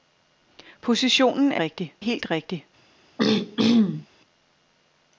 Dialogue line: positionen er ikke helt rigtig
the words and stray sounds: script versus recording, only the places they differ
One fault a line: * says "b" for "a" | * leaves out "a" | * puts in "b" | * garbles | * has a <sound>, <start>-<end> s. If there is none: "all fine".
* says "rigtig" for "ikke"
* has a throat clearing, 3.2-4.1 s